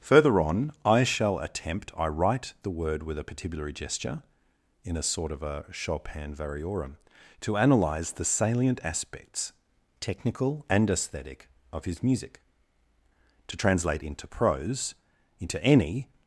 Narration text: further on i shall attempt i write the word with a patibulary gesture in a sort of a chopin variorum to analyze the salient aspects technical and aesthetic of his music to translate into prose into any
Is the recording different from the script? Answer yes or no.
no